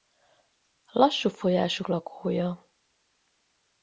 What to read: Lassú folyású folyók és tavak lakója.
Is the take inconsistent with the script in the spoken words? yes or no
yes